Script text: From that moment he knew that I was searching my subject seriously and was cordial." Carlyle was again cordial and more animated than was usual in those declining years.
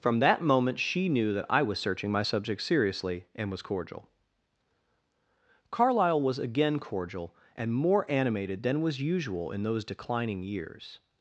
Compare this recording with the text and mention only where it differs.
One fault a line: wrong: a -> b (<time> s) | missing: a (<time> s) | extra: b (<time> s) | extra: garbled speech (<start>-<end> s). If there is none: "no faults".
wrong: he -> she (0.8 s)